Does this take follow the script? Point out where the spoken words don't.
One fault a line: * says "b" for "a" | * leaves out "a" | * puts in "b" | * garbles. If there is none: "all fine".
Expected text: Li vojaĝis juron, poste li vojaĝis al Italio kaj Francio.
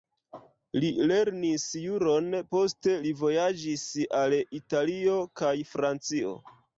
* says "lernis" for "vojaĝis"